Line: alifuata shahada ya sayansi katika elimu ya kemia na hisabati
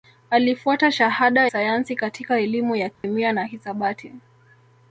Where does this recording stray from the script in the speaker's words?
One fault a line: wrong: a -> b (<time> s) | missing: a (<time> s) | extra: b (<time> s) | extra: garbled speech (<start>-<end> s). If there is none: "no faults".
missing: ya (1.5 s)